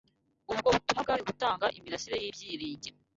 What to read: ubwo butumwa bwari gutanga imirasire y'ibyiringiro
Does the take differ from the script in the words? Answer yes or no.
no